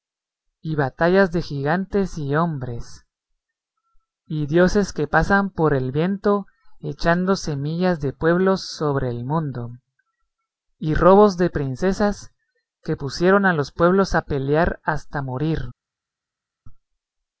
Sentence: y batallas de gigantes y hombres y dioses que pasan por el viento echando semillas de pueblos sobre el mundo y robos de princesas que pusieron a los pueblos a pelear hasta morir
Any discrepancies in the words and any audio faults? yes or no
no